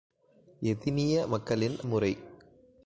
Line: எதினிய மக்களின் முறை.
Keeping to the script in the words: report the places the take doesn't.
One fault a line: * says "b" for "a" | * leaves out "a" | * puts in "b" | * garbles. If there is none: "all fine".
all fine